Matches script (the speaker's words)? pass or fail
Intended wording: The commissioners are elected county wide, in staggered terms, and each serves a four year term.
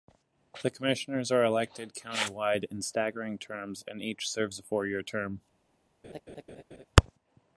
pass